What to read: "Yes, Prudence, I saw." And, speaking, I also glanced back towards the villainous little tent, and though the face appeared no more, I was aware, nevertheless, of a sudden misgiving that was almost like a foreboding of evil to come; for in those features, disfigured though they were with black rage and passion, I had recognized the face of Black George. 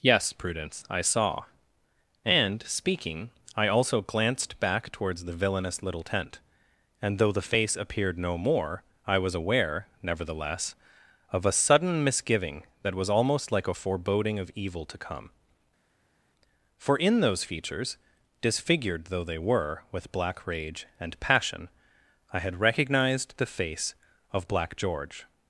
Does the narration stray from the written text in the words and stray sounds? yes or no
no